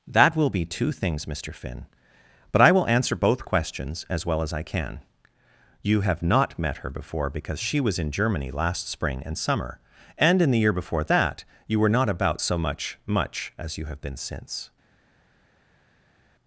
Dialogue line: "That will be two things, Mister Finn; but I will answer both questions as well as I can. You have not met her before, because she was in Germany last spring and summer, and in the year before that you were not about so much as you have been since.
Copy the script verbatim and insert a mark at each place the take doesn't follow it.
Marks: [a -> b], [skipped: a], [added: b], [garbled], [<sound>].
"That will be two things, Mister Finn; but I will answer both questions as well as I can. You have not met her before, because she was in Germany last spring and summer, and in the year before that you were not about so much [added: much] as you have been since.